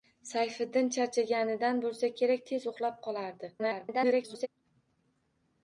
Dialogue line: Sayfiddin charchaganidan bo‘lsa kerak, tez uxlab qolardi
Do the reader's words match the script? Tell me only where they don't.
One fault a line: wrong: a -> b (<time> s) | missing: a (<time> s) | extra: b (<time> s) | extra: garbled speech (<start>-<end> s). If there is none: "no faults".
extra: garbled speech (3.6-4.5 s)